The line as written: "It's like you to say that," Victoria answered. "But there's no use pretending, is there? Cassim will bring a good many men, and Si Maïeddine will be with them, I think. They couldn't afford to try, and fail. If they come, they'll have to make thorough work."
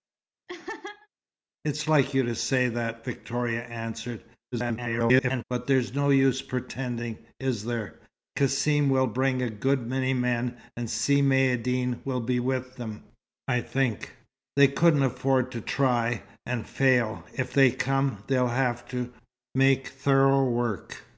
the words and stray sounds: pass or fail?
fail